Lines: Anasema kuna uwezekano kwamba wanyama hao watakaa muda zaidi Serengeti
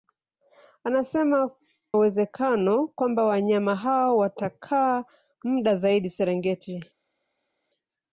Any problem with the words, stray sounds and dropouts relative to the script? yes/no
yes